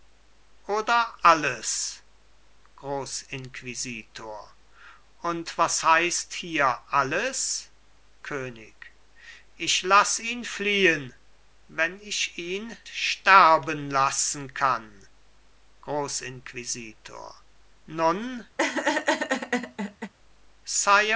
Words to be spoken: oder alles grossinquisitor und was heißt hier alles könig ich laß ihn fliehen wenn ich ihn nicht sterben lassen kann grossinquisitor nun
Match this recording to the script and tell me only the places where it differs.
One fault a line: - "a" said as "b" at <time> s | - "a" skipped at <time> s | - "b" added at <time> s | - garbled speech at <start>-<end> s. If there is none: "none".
- "nicht" skipped at 12.8 s